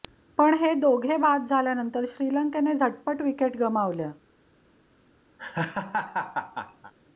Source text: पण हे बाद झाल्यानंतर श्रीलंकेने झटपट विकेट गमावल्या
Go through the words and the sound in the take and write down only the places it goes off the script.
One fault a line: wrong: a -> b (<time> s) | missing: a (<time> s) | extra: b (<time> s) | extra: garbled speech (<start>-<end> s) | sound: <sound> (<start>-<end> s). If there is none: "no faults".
extra: दोघे (0.7 s)
sound: laugh (5.4-6.9 s)